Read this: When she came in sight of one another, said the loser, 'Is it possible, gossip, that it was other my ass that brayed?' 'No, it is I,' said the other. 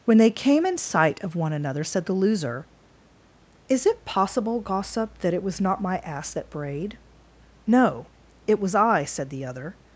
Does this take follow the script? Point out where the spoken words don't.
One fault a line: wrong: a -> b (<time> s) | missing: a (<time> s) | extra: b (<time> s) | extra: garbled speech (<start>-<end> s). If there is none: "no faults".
wrong: she -> they (0.2 s)
wrong: other -> not (5.6 s)
wrong: is -> was (8.6 s)